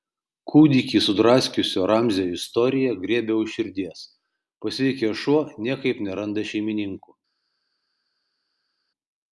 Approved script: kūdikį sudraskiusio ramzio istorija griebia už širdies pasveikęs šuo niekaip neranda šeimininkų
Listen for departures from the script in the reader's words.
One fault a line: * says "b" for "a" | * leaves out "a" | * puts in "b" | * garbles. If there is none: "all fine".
all fine